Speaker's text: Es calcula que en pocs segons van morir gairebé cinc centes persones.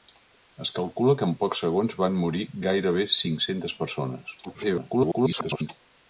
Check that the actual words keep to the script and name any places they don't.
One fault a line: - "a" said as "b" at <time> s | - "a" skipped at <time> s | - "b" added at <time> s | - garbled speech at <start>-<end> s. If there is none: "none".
- garbled speech at 4.4-5.7 s